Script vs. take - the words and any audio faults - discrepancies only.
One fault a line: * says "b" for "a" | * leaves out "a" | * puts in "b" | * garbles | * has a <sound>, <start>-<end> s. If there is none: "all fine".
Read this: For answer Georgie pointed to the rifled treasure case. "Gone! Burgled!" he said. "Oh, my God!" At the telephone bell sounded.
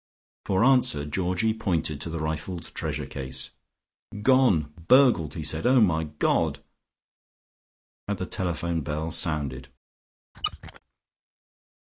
* has a squeak, 10.3-10.8 s